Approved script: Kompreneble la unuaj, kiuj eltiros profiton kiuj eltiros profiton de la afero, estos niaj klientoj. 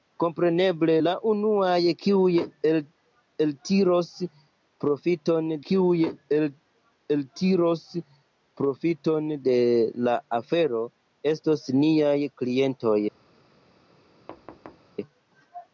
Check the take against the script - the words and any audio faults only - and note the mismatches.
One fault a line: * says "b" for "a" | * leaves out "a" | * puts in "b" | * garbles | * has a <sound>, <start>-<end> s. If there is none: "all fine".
* has a thud, 14.3-14.9 s